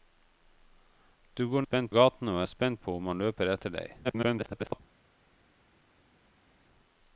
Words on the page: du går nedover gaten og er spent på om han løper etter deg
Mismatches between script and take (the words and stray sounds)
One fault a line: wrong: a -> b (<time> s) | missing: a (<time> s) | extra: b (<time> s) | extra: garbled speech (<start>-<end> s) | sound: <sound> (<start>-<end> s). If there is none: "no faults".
wrong: nedover -> spent (1.6 s)
extra: garbled speech (4.0-4.8 s)